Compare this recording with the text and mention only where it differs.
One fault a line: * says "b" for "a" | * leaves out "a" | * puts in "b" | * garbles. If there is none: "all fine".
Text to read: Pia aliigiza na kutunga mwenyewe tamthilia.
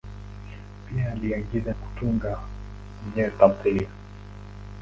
* leaves out "na"